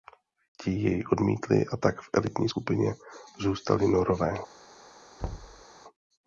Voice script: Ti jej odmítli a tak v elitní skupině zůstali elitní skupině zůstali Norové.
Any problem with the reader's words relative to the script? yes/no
yes